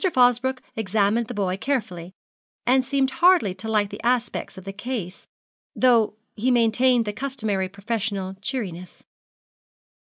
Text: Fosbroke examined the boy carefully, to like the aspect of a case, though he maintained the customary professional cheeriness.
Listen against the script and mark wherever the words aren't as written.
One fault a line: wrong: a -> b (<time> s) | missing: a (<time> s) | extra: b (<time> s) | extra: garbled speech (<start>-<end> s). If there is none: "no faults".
extra: and seemed hardly (2.6 s)
wrong: a -> the (4.6 s)